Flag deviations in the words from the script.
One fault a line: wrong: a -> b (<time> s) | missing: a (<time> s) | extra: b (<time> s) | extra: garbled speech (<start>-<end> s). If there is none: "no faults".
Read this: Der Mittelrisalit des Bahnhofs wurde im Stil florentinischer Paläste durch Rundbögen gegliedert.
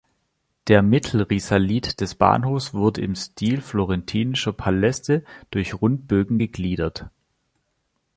no faults